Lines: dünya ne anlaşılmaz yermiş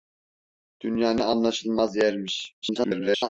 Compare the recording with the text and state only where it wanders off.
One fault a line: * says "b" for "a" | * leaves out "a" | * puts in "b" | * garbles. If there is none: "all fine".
* garbles